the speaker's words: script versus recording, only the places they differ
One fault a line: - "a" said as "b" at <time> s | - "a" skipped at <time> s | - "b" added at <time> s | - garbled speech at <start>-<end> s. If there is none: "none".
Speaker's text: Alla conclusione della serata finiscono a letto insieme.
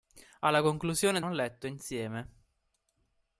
- "della serata finiscono" skipped at 1.2 s